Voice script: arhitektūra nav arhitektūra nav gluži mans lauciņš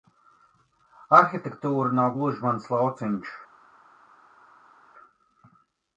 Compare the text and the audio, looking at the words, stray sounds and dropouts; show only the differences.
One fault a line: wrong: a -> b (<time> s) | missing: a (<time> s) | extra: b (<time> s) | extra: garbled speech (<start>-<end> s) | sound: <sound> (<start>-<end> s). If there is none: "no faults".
missing: arhitektūra nav (2.2 s)